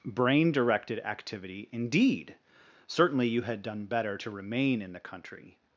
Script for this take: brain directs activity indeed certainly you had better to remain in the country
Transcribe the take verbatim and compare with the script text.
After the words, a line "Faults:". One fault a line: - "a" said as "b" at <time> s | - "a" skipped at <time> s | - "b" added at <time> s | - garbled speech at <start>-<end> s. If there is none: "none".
brain directed activity indeed certainly you had done better to remain in the country
Faults:
- "directs" said as "directed" at 0.5 s
- "done" added at 3.6 s